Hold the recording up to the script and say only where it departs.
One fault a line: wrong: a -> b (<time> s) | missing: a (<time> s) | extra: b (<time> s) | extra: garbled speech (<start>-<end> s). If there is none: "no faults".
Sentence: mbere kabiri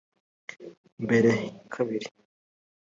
no faults